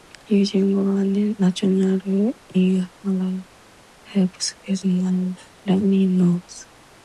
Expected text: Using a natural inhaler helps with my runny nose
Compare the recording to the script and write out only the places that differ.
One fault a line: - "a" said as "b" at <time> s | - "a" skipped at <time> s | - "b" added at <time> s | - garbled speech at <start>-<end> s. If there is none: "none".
none